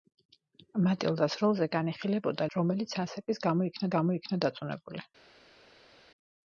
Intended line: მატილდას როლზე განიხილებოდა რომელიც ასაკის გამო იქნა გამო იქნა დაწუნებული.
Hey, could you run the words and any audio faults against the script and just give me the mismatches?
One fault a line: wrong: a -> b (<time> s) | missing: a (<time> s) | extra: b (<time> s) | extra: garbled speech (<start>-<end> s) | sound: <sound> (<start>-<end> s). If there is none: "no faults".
no faults